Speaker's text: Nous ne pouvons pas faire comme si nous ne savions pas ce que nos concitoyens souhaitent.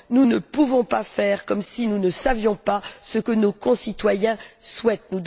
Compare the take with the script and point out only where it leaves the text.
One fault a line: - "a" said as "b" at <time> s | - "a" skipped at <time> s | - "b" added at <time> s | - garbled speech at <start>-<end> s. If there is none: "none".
none